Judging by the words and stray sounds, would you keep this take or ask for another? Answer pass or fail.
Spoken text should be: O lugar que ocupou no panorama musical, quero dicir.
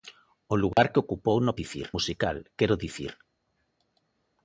fail